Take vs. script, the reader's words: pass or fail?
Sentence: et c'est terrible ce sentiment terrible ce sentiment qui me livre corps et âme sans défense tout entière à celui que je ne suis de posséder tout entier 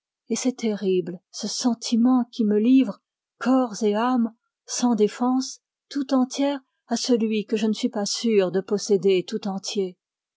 fail